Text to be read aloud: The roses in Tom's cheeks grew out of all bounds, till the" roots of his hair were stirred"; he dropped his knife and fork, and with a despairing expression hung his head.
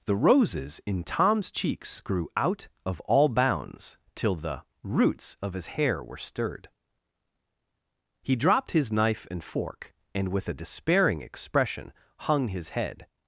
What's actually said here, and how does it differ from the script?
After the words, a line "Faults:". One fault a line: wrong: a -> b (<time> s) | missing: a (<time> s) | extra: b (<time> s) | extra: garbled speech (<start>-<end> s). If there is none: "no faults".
The roses in Tom's cheeks grew out of all bounds, till the" roots of his hair were stirred"; he dropped his knife and fork, and with a despairing expression hung his head.
Faults:
no faults